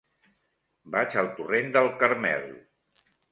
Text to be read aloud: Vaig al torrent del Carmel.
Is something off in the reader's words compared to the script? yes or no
no